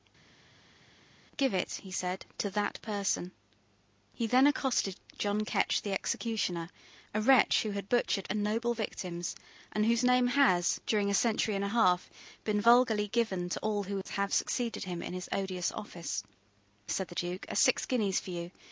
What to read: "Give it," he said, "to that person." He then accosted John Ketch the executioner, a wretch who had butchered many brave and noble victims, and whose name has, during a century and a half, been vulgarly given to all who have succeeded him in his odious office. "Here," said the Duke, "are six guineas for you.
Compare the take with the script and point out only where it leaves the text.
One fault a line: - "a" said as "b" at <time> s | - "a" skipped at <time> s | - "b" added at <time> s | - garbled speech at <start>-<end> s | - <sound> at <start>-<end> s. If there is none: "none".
- "many brave" skipped at 8.3 s
- "Here" skipped at 16.2 s